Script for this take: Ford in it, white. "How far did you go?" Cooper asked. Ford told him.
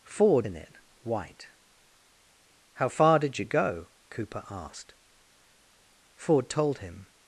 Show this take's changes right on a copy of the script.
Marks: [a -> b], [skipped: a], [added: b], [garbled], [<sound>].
Ford in it, white. "How far did you go?" Cooper asked. Ford told him.